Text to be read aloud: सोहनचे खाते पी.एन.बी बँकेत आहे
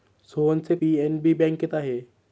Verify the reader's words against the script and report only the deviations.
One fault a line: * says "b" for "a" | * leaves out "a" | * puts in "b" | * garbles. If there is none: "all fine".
* leaves out "खाते"